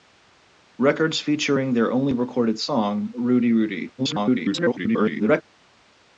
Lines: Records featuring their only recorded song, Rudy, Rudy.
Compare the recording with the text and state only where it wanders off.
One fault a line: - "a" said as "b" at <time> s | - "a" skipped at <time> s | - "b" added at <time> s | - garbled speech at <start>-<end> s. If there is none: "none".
- garbled speech at 4.0-5.4 s